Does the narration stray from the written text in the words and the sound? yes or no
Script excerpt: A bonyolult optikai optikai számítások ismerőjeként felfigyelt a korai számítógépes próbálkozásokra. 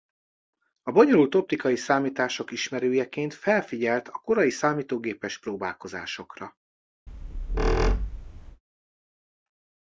yes